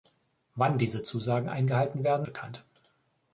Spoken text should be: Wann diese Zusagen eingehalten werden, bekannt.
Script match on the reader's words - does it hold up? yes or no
yes